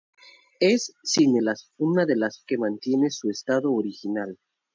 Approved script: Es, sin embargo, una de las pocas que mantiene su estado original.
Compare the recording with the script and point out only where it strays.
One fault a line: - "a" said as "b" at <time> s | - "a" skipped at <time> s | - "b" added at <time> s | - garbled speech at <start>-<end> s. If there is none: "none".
- "embargo" said as "las" at 1.4 s
- "pocas" skipped at 2.4 s